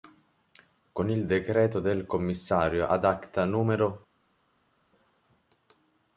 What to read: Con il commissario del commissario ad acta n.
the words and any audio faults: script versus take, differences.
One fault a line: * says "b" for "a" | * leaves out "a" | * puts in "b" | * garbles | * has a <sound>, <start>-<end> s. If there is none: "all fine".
* says "decreto" for "commissario"